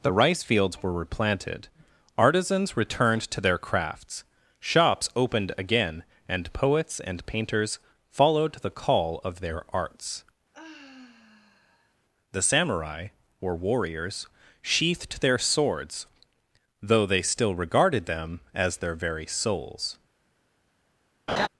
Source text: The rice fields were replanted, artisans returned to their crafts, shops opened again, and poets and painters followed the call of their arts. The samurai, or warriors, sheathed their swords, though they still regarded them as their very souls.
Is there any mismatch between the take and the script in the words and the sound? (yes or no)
yes